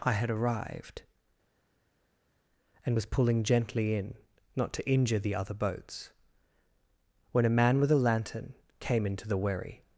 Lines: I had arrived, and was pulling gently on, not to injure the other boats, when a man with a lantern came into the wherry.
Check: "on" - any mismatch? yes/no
yes